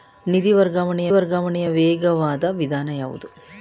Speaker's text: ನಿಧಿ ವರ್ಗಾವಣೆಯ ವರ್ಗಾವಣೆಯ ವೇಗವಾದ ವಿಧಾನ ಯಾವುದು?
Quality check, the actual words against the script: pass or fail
pass